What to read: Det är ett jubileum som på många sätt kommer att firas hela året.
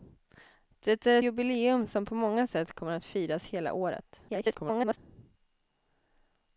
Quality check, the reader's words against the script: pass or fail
fail